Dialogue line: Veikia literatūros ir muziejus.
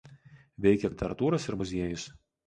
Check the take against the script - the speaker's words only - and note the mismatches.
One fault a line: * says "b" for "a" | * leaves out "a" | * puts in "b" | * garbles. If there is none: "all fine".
all fine